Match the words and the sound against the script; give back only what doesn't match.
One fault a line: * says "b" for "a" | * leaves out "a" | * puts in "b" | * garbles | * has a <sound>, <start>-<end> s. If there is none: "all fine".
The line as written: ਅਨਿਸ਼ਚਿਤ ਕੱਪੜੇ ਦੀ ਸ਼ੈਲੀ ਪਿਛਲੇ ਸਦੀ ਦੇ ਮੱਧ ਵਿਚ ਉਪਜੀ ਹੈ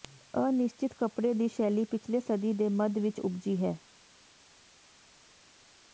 all fine